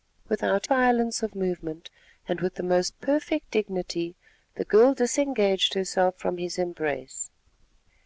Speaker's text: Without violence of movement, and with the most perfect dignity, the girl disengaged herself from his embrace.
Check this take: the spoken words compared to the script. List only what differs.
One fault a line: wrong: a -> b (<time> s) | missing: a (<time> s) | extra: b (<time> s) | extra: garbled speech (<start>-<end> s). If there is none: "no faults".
no faults